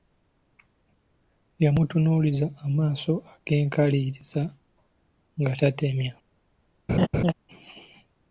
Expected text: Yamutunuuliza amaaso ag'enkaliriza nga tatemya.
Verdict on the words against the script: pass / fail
pass